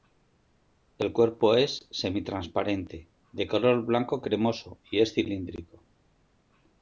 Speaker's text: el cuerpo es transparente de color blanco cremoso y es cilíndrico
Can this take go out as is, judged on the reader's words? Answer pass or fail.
fail